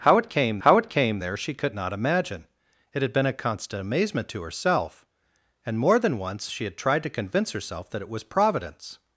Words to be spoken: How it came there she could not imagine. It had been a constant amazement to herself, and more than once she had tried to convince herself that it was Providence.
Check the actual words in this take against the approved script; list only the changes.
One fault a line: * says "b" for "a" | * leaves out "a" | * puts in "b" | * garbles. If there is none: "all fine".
* puts in "how it came"